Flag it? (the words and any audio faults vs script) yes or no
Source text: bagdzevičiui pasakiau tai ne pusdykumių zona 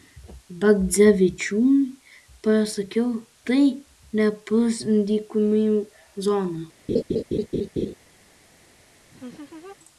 yes